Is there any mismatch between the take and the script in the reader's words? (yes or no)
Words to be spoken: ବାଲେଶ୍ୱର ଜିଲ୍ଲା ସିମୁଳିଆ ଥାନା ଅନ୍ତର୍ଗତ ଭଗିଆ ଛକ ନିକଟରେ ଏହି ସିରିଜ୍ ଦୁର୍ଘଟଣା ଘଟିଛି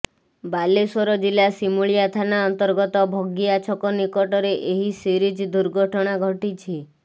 no